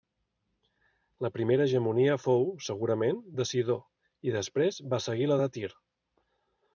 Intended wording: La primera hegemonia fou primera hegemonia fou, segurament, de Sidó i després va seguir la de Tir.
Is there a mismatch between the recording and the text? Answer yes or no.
yes